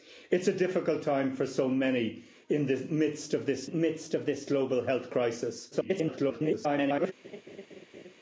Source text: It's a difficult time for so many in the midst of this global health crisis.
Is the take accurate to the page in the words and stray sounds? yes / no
no